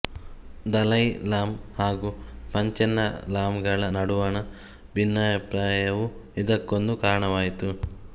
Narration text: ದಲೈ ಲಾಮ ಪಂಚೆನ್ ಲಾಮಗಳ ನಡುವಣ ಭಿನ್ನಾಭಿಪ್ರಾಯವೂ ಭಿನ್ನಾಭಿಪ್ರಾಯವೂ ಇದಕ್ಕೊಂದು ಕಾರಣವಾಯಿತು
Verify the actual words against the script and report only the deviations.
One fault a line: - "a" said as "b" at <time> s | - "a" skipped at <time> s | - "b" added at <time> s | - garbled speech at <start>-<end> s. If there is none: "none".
- "ಹಾಗೂ" added at 1.8 s
- "ಭಿನ್ನಾಭಿಪ್ರಾಯವೂ" skipped at 6.1 s